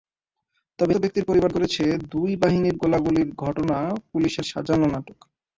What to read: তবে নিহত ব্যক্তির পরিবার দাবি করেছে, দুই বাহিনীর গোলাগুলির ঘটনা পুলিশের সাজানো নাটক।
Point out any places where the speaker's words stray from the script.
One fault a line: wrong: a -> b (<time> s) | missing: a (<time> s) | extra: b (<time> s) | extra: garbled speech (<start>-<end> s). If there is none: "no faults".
missing: নিহত (0.9 s)
missing: দাবি (1.5 s)